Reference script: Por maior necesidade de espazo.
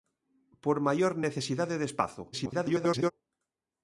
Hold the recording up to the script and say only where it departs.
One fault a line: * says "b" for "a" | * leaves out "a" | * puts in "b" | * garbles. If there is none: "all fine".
* garbles